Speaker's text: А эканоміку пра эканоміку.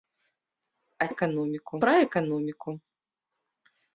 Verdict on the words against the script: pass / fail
pass